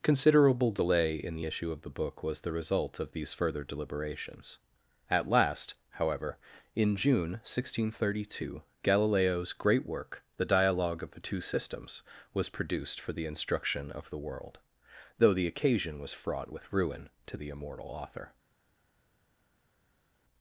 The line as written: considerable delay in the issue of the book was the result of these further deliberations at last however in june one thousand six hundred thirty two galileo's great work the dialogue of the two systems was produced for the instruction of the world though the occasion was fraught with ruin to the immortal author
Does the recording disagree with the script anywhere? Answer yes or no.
no